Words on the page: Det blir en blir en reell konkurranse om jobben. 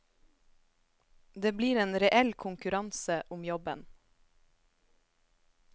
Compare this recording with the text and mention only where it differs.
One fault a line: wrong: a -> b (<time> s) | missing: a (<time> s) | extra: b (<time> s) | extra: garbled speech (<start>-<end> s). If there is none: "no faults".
missing: blir en (2.0 s)